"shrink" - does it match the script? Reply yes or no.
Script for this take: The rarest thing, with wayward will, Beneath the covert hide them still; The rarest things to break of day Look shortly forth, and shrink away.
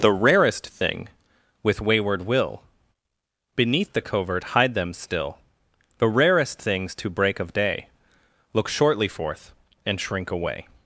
yes